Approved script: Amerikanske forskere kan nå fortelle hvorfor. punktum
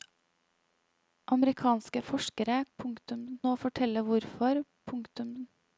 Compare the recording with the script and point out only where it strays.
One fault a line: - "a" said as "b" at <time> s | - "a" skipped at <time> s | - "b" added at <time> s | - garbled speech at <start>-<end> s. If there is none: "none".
- "kan" said as "punktum" at 2.8 s